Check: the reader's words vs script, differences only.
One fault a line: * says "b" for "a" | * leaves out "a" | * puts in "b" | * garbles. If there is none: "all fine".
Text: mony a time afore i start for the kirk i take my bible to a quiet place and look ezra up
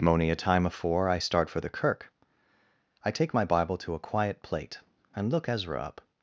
* says "plate" for "place"